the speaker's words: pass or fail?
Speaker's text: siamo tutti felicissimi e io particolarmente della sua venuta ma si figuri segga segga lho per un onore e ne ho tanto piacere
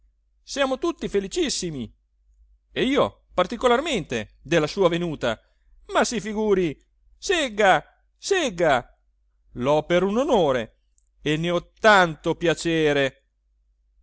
pass